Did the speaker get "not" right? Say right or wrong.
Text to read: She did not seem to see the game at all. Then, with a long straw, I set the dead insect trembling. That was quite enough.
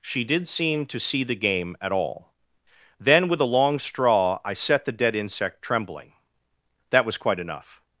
wrong